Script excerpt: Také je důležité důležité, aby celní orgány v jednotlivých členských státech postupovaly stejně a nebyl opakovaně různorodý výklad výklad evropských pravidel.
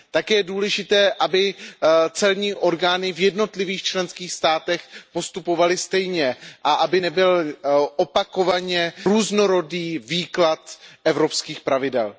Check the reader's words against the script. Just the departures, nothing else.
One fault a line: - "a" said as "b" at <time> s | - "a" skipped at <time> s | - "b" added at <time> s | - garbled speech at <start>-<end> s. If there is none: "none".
- "důležité" skipped at 1.1 s
- "aby" added at 6.7 s
- "výklad" skipped at 10.8 s